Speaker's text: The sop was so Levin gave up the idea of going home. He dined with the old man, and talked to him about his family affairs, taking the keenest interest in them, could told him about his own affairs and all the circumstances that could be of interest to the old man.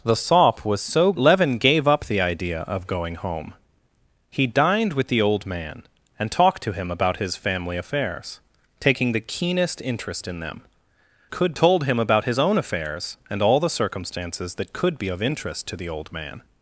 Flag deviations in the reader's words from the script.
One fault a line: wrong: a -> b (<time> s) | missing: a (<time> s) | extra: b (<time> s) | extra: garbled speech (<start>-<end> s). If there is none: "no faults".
no faults